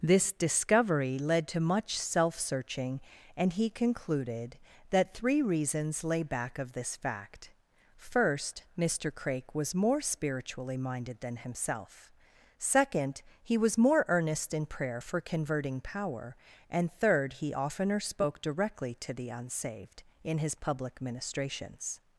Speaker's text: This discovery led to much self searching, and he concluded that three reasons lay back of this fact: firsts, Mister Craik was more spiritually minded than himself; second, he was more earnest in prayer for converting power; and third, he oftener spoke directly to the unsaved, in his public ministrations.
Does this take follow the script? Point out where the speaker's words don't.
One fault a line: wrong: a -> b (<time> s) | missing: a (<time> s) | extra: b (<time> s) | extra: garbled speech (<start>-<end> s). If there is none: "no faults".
wrong: firsts -> first (8.0 s)